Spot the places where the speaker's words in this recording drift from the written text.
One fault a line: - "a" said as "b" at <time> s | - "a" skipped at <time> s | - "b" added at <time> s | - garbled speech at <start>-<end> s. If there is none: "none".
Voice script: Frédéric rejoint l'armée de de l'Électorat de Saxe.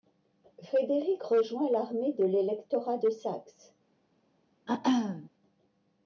- "de" skipped at 2.2 s